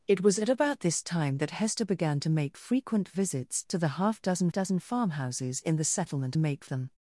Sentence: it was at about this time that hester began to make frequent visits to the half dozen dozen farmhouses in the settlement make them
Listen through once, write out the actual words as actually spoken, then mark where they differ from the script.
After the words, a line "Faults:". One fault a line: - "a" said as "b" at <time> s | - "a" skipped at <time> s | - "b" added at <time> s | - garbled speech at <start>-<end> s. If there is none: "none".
it was at about this time that hester began to make frequent visits to the half dozen dozen farmhouses in the settlement make them
Faults:
none